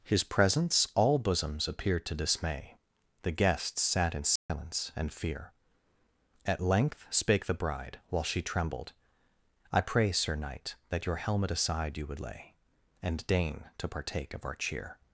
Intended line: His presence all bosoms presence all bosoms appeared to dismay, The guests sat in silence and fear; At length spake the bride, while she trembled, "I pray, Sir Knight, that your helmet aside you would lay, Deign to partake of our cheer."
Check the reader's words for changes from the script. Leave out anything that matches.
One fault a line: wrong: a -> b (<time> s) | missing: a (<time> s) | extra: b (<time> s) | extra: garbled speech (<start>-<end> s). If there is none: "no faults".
missing: presence all bosoms (1.7 s)
extra: And (13.0 s)